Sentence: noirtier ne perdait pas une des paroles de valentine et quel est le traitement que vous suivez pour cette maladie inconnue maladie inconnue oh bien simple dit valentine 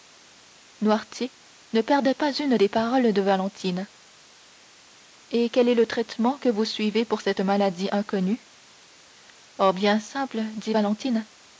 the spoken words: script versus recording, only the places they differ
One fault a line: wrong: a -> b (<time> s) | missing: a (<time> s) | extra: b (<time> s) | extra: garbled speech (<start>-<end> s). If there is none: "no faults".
missing: maladie inconnue (8.5 s)